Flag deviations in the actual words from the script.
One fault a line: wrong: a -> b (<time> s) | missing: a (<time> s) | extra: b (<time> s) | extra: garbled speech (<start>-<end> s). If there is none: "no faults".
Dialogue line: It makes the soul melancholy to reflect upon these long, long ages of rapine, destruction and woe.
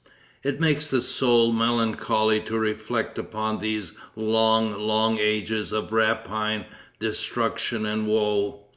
no faults